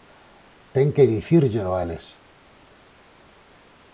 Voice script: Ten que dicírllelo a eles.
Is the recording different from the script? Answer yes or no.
no